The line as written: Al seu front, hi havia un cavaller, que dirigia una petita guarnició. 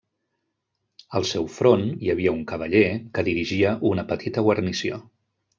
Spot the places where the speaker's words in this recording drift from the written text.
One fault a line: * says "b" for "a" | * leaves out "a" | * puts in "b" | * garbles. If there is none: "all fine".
all fine